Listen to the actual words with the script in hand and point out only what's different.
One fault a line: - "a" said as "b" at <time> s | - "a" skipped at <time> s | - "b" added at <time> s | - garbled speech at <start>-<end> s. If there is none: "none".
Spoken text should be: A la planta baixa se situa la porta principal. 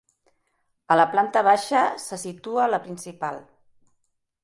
- "porta" skipped at 2.8 s